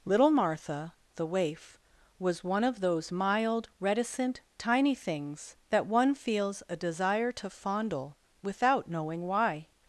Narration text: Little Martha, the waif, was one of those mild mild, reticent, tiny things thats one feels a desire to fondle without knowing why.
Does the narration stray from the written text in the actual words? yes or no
yes